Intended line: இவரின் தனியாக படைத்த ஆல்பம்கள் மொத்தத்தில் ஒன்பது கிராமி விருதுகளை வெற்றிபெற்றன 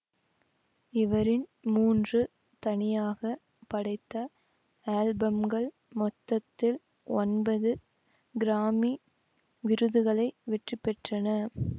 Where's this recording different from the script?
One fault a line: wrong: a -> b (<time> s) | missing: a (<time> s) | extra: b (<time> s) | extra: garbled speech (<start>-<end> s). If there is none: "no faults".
extra: மூன்று (1.7 s)